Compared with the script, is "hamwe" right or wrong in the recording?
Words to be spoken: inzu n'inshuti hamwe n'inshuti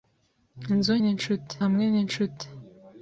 right